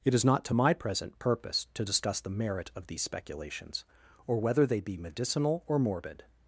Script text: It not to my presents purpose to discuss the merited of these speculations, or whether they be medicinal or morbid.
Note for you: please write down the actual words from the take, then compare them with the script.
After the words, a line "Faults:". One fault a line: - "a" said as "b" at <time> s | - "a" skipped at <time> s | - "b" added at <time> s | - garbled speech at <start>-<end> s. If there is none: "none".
It is not to my present purpose to discuss the merit of these speculations, or whether they be medicinal or morbid.
Faults:
- "is" added at 0.1 s
- "presents" said as "present" at 0.7 s
- "merited" said as "merit" at 2.3 s